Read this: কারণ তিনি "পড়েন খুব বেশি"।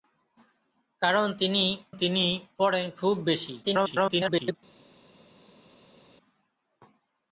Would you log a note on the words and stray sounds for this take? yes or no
yes